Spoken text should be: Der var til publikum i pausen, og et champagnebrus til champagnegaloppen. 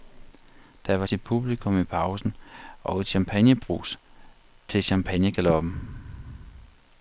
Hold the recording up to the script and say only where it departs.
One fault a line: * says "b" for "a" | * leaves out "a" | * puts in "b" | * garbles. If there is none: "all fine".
all fine